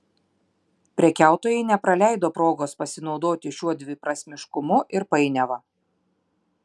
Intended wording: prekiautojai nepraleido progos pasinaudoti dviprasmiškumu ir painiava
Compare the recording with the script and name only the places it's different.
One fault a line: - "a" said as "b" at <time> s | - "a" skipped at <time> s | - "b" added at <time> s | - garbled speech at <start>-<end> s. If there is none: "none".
- "šiuo" added at 3.6 s